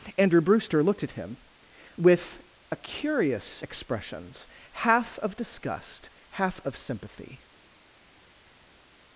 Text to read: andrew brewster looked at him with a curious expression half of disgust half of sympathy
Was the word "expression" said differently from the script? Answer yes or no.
yes